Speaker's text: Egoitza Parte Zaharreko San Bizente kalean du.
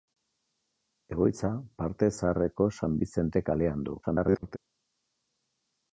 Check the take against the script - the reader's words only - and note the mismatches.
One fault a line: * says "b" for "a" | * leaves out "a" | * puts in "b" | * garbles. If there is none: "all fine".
* garbles